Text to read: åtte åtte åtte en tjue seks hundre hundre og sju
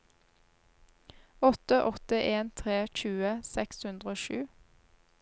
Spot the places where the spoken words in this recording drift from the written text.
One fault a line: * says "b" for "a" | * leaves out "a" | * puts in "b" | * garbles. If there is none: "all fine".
* says "en tre" for "åtte en"
* leaves out "hundre"